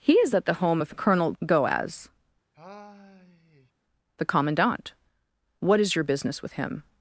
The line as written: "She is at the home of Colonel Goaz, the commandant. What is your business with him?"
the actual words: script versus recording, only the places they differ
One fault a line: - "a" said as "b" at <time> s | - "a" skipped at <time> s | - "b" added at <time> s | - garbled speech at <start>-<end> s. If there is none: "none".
- "She" said as "He" at 0.0 s